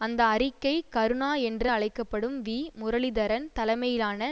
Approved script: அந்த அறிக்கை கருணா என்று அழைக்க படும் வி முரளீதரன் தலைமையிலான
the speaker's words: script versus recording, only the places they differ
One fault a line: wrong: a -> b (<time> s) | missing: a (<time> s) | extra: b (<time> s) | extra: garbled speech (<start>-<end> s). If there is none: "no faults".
no faults